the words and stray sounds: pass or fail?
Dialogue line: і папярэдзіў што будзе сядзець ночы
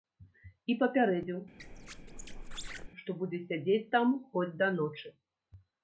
fail